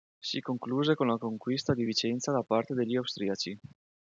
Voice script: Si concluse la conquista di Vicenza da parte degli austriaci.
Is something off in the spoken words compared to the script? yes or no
yes